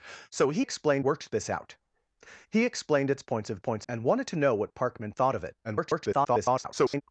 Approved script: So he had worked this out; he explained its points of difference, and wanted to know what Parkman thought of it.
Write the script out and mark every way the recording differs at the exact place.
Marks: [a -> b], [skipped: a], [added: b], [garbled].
So he [had -> explained] worked this out; he explained its points of [difference, -> points] and wanted to know what Parkman thought of it. [garbled]